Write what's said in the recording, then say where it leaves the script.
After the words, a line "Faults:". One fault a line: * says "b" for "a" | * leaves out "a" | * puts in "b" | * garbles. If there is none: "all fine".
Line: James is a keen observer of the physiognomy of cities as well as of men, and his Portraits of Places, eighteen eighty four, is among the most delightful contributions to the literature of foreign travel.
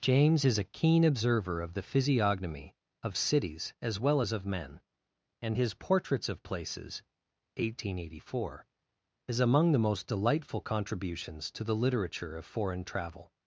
James is a keen observer of the physiognomy of cities as well as of men, and his Portraits of Places, eighteen eighty four, is among the most delightful contributions to the literature of foreign travel.
Faults:
all fine